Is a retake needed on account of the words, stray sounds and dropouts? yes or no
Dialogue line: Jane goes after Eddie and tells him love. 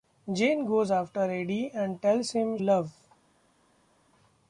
no